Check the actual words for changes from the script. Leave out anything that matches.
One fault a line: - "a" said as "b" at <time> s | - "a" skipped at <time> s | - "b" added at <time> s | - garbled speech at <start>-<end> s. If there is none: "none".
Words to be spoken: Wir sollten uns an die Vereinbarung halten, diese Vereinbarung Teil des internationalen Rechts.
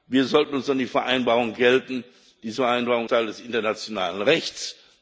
none